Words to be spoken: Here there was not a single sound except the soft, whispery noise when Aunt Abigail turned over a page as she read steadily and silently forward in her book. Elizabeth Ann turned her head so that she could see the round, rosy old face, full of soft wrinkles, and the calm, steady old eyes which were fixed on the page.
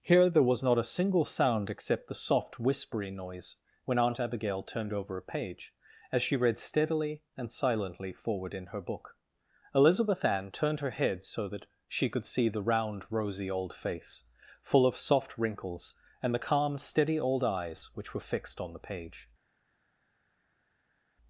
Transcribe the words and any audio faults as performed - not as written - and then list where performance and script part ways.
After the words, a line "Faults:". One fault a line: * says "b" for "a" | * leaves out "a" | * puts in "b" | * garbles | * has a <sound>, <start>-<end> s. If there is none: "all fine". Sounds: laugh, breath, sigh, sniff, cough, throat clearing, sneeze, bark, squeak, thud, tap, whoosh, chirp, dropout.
Here there was not a single sound except the soft, whispery noise when Aunt Abigail turned over a page as she read steadily and silently forward in her book. Elizabeth Ann turned her head so that she could see the round, rosy old face, full of soft wrinkles, and the calm, steady old eyes which were fixed on the page.
Faults:
all fine